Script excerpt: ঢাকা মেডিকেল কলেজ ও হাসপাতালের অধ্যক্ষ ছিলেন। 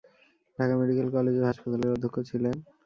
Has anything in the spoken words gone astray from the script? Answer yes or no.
no